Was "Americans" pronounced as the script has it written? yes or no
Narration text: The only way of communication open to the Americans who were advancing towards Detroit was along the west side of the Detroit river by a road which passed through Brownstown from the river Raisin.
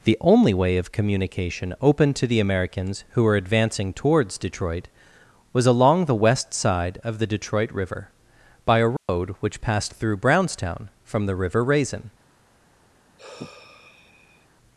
yes